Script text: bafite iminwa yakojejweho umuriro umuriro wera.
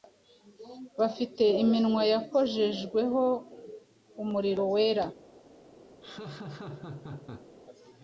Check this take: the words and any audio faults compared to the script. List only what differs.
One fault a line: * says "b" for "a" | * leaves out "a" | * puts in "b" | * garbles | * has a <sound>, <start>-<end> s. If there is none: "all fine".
* leaves out "umuriro"
* has a laugh, 6.0-7.5 s